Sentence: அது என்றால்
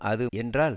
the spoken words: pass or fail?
pass